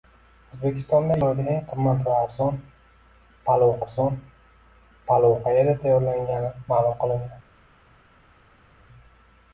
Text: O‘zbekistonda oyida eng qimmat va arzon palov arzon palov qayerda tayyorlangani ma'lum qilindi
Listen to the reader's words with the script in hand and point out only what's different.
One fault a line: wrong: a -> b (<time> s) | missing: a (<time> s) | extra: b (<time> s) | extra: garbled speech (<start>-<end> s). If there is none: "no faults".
no faults